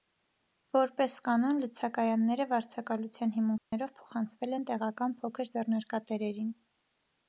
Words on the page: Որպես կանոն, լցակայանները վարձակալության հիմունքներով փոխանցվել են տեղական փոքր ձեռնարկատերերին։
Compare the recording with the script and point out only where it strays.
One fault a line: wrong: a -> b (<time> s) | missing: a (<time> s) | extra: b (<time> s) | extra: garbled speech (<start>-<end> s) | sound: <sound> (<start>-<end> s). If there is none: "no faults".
sound: dropout (3.6-3.7 s)